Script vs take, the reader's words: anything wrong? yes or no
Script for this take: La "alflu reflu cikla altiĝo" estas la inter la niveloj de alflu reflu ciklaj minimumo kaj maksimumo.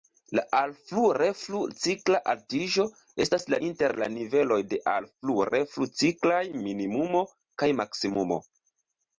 no